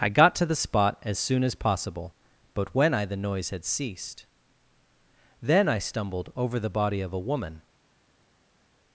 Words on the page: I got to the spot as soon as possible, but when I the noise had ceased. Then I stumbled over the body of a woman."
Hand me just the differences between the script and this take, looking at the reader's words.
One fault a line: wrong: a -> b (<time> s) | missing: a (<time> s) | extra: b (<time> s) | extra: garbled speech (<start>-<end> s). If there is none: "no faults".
no faults